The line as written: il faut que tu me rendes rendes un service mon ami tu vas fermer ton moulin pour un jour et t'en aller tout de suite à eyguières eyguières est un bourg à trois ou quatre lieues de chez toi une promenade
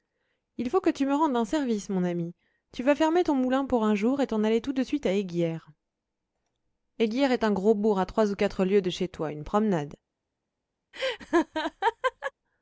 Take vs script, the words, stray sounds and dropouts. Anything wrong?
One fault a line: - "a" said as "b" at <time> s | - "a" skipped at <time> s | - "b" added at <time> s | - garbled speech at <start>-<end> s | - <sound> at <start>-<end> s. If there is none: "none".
- "rendes" skipped at 1.3 s
- "gros" added at 7.5 s
- laugh at 10.9-12.3 s